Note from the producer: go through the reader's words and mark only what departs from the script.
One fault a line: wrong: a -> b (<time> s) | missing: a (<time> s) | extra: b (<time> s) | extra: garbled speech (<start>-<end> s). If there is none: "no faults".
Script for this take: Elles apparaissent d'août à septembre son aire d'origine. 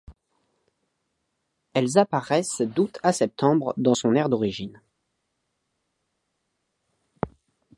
extra: dans (3.8 s)